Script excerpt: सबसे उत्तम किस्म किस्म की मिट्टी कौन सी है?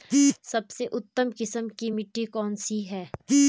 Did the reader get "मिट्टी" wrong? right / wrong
right